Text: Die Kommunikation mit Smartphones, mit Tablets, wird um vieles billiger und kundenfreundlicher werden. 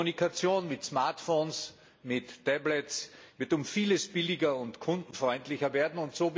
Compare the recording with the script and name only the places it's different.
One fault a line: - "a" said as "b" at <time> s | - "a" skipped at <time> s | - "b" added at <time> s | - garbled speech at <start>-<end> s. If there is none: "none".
none